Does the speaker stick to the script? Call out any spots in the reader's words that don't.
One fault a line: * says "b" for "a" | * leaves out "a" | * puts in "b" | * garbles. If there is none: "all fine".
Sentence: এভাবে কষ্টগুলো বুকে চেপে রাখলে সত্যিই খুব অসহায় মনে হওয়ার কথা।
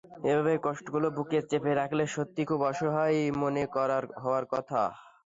all fine